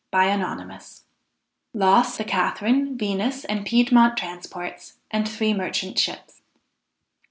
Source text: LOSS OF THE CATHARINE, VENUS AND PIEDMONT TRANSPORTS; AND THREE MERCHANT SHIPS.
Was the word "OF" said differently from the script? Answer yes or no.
yes